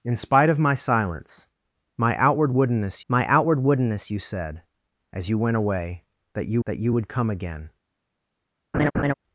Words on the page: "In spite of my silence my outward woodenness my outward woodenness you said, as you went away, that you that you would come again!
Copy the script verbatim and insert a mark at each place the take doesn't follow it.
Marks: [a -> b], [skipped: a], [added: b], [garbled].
"In spite of my silence my outward woodenness my outward woodenness you said, as you went away, that you that you would come again!